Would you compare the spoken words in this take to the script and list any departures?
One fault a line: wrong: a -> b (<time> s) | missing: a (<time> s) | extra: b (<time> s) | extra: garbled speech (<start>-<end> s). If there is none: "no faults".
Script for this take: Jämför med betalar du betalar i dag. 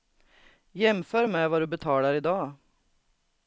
wrong: betalar -> vad (1.5 s)